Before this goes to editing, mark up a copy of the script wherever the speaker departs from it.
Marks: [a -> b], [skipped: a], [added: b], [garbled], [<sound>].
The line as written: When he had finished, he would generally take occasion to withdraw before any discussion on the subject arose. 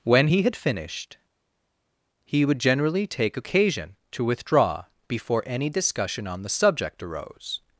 When he had finished, he would generally take occasion to withdraw before any discussion on the subject arose.